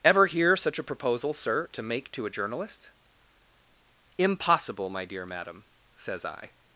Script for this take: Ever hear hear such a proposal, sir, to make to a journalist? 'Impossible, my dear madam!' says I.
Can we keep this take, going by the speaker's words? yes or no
no